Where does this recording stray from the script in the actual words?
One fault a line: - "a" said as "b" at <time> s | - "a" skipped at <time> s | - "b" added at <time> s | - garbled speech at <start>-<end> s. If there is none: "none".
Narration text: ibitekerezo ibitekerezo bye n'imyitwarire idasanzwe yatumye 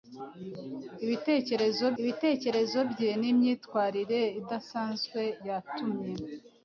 none